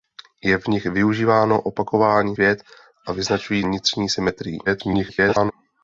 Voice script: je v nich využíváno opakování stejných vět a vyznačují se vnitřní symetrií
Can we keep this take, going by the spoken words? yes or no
no